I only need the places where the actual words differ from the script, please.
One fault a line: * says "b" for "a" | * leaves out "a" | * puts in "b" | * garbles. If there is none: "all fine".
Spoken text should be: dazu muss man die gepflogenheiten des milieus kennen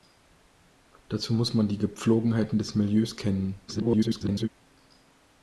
* garbles